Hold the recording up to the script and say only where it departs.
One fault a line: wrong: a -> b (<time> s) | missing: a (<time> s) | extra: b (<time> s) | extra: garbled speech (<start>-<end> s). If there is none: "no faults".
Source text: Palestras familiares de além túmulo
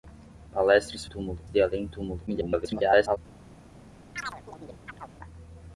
wrong: familiares -> túmulo (1.0 s)
extra: garbled speech (2.3-3.2 s)